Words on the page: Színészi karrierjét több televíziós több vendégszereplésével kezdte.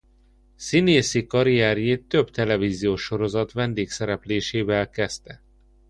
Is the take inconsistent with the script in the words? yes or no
yes